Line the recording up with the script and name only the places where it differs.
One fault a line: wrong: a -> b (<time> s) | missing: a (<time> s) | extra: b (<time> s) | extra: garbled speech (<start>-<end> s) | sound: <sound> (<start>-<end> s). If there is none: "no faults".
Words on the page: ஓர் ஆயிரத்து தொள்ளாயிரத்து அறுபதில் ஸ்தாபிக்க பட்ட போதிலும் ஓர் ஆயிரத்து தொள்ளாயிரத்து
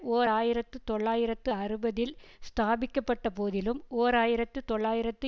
no faults